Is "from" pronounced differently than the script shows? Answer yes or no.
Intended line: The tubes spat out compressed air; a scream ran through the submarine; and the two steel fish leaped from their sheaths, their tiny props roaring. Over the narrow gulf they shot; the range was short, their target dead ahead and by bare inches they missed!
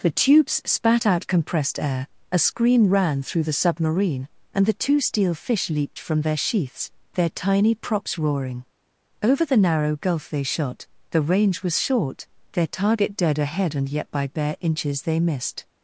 no